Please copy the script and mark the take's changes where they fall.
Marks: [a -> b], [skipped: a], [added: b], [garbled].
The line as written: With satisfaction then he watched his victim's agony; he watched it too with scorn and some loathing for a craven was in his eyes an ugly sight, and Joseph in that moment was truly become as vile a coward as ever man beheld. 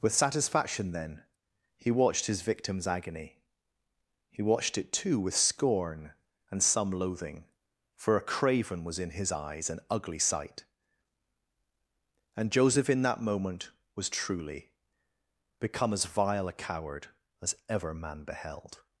With satisfaction then he watched his victim's agony; he watched it too with scorn and some loathing for a craven was in his eyes an ugly sight, and Joseph in that moment was truly become as vile a coward as ever man beheld.